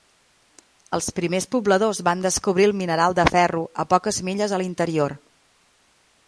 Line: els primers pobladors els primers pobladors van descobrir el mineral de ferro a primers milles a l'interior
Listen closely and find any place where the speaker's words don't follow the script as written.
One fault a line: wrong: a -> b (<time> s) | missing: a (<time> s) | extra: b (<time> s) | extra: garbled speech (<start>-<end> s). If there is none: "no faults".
missing: els primers pobladors (2.0 s)
wrong: primers -> poques (4.0 s)